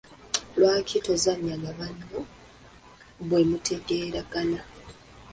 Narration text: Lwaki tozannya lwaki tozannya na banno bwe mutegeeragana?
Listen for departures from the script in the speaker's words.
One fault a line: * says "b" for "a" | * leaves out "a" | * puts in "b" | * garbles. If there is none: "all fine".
* leaves out "lwaki tozannya"